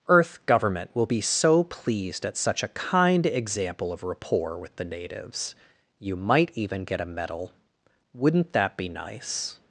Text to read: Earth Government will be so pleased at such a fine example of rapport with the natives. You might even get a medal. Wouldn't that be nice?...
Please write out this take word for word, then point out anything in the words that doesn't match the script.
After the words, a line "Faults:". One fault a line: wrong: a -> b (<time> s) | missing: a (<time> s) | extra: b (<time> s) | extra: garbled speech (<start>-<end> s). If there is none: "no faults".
Earth Government will be so pleased at such a kind example of rapport with the natives. You might even get a medal. Wouldn't that be nice?...
Faults:
wrong: fine -> kind (2.7 s)